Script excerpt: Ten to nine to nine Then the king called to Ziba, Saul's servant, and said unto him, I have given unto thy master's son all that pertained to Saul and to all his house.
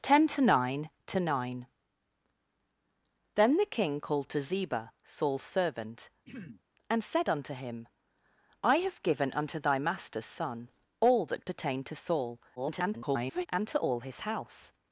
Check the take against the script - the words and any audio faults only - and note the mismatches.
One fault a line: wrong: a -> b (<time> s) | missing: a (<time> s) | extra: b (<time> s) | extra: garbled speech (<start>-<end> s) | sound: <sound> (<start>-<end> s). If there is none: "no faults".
sound: throat clearing (6.2-6.6 s)
extra: garbled speech (12.6-13.5 s)